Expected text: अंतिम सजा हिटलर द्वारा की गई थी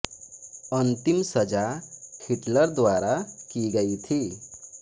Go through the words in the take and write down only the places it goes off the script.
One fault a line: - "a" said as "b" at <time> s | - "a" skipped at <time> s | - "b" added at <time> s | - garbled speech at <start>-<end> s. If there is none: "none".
none